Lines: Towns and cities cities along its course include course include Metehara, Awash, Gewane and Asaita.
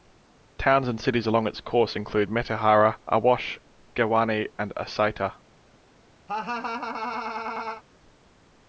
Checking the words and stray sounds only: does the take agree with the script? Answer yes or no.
no